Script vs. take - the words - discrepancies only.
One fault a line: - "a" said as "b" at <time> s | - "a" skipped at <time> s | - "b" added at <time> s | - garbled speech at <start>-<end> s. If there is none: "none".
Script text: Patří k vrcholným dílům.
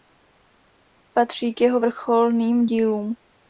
- "jeho" added at 1.6 s